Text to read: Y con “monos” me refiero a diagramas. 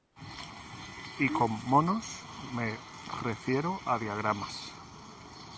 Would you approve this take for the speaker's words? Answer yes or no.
yes